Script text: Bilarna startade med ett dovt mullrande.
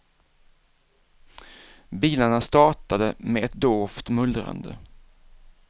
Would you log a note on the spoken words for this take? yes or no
no